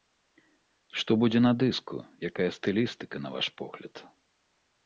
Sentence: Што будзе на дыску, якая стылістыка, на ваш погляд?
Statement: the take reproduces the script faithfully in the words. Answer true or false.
true